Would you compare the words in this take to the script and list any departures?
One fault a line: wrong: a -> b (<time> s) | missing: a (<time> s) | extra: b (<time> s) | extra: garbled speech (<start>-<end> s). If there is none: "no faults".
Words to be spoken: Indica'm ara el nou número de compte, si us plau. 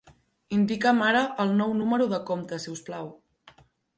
no faults